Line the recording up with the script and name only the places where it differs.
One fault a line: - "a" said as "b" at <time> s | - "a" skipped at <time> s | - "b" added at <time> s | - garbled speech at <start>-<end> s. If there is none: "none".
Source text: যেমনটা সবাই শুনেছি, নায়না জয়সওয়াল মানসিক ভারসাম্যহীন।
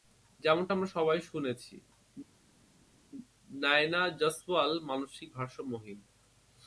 - "আমরা" added at 0.7 s